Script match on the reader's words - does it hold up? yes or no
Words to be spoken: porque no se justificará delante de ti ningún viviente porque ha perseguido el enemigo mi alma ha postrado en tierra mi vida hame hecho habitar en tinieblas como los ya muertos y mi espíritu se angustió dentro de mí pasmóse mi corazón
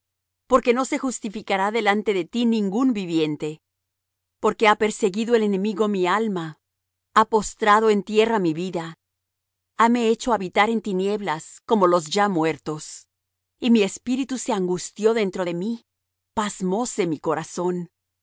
yes